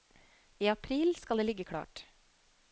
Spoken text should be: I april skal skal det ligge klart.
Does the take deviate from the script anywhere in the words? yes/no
yes